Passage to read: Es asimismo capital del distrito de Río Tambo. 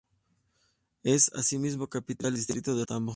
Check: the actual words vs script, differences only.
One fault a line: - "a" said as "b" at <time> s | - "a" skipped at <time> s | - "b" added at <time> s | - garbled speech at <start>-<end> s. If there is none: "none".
- "del" skipped at 2.4 s
- "Río" skipped at 2.8 s